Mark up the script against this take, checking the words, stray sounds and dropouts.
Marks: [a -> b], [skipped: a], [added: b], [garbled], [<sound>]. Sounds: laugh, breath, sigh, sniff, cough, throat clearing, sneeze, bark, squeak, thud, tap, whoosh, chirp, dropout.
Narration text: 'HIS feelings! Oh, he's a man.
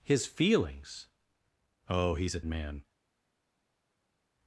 'HIS feelings! Oh, he's a man.